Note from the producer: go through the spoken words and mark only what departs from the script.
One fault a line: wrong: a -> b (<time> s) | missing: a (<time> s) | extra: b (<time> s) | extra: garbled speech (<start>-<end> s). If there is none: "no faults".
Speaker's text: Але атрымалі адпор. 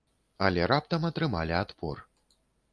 extra: раптам (0.7 s)